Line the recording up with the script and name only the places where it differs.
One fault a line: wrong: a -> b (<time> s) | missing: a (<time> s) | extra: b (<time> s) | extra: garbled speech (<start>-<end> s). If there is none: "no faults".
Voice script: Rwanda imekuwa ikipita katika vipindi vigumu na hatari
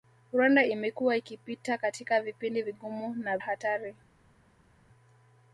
no faults